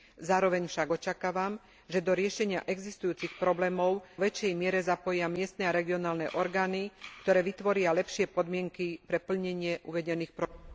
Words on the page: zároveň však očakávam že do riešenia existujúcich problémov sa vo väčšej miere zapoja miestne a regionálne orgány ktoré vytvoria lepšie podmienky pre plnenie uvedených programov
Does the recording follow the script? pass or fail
fail